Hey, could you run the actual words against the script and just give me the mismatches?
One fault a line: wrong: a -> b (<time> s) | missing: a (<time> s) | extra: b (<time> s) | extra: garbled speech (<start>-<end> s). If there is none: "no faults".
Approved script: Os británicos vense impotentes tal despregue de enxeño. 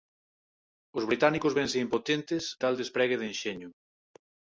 no faults